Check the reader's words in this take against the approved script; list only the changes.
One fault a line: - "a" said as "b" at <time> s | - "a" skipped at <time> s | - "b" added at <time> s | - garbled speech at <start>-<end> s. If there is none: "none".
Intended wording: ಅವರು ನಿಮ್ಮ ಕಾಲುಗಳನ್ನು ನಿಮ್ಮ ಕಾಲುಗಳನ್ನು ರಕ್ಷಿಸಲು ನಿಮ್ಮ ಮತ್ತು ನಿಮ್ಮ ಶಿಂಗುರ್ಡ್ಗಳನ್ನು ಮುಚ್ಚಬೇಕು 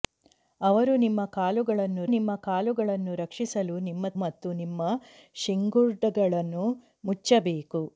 none